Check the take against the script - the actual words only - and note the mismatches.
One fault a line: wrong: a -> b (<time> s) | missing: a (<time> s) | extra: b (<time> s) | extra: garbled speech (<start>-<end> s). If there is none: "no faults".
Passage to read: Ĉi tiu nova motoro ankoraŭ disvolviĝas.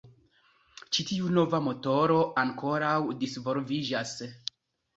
no faults